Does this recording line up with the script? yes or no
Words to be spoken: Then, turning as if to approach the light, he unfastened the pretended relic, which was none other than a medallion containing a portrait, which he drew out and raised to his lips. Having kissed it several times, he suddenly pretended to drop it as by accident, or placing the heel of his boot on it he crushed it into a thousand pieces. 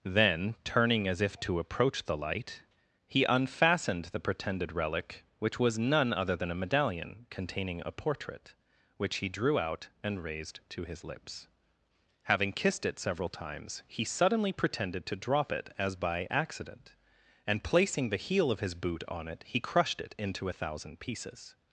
no